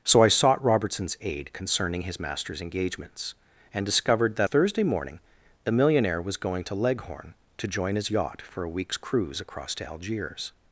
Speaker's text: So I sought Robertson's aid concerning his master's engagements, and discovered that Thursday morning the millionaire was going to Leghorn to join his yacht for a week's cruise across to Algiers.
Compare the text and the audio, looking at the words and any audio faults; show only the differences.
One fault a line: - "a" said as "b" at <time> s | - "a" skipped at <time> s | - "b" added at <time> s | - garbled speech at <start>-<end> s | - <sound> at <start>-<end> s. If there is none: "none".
none